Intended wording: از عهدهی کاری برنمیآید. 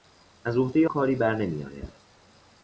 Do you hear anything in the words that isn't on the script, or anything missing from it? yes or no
no